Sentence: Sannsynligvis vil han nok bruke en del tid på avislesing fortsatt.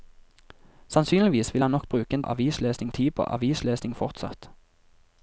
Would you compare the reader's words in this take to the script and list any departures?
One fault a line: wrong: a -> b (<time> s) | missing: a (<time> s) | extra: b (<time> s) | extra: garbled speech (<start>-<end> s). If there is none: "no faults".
wrong: del -> avislesing (2.2 s)